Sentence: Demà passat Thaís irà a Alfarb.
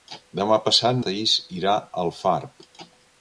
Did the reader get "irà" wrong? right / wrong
right